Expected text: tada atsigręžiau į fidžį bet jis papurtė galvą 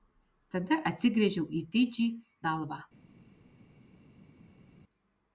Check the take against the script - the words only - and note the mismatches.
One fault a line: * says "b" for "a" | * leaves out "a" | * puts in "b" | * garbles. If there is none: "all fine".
* leaves out "bet jis papurtė"